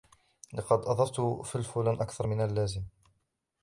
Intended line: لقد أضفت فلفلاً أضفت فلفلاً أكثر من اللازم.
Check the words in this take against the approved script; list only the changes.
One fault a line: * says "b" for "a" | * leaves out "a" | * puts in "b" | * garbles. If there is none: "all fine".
* leaves out "أضفت فلفلاً"